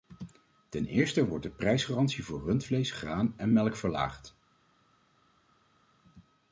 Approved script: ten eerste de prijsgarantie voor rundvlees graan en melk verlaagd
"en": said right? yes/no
yes